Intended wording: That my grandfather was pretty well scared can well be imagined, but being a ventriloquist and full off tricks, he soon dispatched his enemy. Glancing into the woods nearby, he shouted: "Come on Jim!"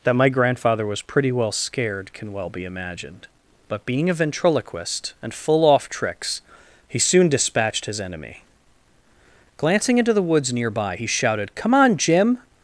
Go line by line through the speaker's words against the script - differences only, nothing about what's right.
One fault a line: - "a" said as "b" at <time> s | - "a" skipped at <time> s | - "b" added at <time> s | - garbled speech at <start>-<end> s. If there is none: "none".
none